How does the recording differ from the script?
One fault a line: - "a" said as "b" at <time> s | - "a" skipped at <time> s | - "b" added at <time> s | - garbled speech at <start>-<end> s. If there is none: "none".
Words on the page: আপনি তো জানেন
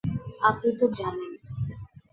none